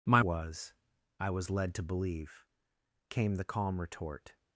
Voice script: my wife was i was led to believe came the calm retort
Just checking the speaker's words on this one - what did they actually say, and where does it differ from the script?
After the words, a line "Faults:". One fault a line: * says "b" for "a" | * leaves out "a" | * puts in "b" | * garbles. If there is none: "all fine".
my was i was led to believe came the calm retort
Faults:
* leaves out "wife"